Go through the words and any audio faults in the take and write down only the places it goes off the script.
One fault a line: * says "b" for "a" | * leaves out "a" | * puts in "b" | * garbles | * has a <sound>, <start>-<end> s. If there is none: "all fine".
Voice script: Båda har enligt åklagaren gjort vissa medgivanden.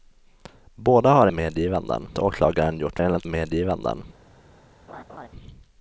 * says "medgivanden" for "enligt"
* says "enligt" for "vissa"
* has a laugh, 4.9-5.3 s